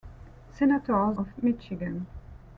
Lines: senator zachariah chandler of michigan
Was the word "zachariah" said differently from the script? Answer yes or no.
yes